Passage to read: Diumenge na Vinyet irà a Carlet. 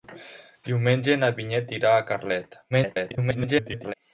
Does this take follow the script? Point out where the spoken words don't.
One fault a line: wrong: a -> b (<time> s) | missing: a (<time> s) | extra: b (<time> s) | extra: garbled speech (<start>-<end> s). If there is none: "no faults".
extra: garbled speech (2.7-3.9 s)